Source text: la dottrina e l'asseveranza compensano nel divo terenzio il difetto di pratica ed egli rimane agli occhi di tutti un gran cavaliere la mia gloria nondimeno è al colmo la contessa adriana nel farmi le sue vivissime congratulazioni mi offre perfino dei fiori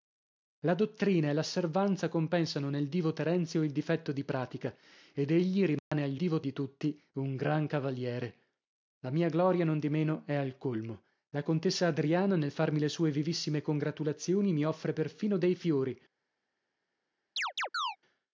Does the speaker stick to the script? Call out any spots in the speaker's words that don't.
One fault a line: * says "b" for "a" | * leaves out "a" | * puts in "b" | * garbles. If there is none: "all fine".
* says "divo" for "occhi"